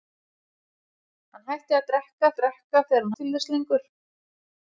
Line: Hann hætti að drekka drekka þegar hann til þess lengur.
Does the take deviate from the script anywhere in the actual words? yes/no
no